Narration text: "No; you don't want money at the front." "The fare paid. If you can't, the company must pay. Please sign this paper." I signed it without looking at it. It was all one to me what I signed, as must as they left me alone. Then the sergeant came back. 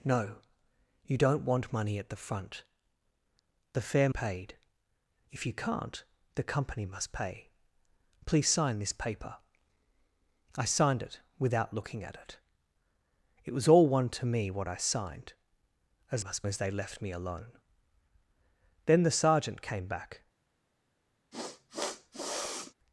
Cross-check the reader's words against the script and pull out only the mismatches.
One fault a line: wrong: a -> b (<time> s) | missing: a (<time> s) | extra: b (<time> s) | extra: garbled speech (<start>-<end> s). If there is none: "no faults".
no faults